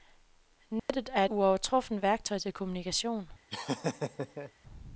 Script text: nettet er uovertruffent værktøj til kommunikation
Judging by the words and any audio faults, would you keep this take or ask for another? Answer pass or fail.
fail